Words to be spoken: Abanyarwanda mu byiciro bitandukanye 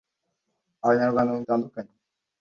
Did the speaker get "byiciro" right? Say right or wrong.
wrong